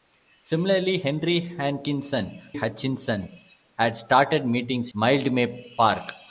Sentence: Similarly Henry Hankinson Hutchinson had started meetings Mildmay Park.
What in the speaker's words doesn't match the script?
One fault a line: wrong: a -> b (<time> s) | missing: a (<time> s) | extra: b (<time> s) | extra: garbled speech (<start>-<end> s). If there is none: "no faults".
no faults